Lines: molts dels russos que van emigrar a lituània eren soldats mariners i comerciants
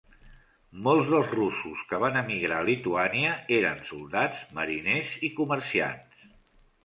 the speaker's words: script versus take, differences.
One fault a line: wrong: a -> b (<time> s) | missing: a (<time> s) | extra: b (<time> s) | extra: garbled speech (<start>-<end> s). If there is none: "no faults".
no faults